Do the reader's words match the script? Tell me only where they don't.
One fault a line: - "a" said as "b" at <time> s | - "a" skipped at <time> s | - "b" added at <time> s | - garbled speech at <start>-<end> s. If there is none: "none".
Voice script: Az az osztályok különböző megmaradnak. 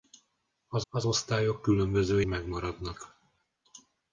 none